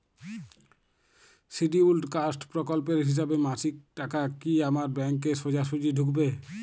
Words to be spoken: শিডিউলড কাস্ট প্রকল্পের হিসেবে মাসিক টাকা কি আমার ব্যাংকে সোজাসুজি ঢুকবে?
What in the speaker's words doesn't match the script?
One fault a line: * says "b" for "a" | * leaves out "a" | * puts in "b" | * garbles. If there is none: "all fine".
all fine